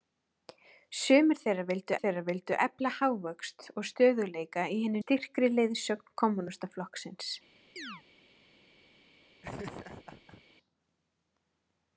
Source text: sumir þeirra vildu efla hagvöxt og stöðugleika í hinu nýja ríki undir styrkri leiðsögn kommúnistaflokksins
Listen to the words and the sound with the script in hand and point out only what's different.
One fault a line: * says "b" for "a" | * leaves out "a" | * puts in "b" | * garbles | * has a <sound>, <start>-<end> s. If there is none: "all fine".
* puts in "þeirra vildu"
* leaves out "nýja ríki undir"
* has a chirp, 7.8-8.0 s
* has a laugh, 9.4-10.4 s